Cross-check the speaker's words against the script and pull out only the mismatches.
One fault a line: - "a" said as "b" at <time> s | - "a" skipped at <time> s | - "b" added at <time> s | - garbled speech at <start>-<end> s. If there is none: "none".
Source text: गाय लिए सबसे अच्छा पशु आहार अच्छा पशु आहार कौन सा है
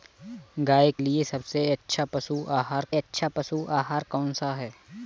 none